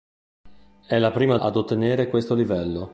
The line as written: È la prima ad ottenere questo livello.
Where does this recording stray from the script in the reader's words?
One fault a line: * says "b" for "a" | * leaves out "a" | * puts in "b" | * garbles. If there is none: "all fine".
all fine